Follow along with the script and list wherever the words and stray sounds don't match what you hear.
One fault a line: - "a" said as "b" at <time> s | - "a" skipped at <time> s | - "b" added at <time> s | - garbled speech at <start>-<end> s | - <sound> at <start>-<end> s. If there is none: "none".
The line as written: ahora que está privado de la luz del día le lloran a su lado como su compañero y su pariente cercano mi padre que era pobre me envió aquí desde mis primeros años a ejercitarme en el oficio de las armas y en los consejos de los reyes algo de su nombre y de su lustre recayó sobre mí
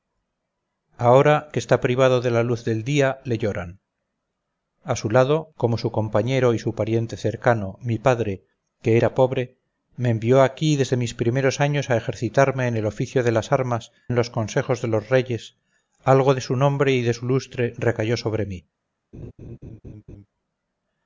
- "y" skipped at 13.9 s
- laugh at 19.1-20.3 s